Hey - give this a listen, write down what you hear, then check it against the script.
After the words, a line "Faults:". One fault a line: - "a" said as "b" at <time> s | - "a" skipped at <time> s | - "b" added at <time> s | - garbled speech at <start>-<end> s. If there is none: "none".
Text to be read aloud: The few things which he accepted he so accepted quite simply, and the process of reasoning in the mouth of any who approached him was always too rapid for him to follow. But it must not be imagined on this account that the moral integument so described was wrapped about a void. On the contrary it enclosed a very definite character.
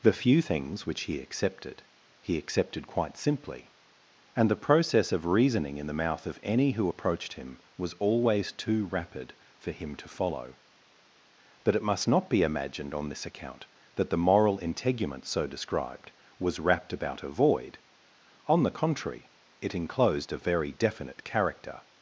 The few things which he accepted he accepted quite simply, and the process of reasoning in the mouth of any who approached him was always too rapid for him to follow. But it must not be imagined on this account that the moral integument so described was wrapped about a void. On the contrary it enclosed a very definite character.
Faults:
- "so" skipped at 2.4 s